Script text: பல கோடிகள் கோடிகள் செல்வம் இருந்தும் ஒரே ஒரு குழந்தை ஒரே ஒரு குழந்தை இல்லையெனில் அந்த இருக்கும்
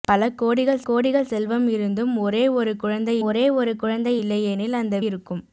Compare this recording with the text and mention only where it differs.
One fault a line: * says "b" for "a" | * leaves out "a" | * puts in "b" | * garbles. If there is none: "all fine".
all fine